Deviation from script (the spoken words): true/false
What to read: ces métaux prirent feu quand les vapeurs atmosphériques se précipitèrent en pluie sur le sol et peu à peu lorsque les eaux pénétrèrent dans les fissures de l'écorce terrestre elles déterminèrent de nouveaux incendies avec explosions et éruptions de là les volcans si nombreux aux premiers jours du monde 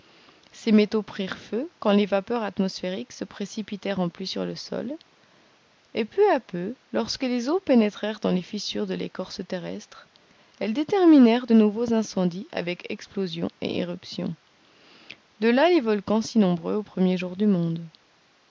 false